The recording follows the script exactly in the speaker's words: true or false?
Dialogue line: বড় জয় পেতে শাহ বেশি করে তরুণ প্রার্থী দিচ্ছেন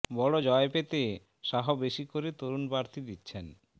true